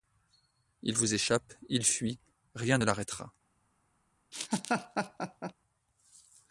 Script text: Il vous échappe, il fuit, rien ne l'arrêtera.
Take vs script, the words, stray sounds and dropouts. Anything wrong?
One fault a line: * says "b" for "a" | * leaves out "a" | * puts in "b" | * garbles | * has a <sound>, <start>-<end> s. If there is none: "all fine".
* has a laugh, 4.3-5.5 s